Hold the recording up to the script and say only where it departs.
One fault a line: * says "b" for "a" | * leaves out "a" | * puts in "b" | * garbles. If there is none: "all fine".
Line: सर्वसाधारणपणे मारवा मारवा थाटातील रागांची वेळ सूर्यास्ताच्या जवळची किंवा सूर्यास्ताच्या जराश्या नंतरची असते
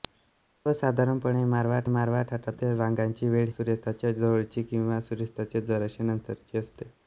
all fine